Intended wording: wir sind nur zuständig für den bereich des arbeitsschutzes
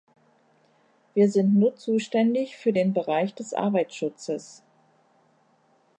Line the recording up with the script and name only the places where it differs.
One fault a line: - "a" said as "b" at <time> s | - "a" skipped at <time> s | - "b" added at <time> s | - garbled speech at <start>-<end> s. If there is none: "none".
none